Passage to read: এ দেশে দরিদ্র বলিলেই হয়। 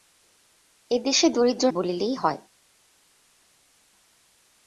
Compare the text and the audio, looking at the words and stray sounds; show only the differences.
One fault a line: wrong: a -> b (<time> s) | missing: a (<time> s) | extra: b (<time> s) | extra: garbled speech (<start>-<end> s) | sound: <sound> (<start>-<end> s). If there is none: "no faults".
no faults